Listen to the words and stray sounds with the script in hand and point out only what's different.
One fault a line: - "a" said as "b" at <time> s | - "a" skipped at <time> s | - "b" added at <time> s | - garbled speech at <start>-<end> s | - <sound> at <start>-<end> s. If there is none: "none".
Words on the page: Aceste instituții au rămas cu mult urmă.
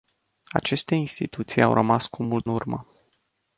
none